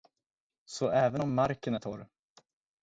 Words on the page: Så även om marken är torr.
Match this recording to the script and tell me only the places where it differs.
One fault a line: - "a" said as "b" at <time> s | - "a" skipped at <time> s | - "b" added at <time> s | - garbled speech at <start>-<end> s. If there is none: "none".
none